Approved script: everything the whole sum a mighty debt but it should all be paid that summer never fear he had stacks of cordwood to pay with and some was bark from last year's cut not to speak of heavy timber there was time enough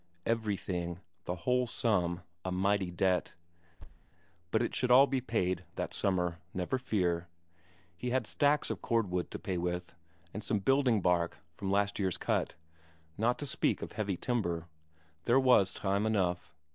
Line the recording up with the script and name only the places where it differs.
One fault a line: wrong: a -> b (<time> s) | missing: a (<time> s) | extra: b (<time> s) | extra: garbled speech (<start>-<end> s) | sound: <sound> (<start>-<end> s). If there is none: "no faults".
sound: thud (3.8-4.1 s)
wrong: was -> building (10.6 s)